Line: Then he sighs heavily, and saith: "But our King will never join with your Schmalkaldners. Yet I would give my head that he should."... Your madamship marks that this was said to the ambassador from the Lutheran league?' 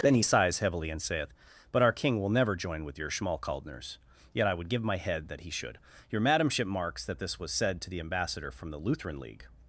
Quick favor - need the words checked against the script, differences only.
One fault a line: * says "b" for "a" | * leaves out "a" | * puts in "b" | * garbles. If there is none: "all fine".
all fine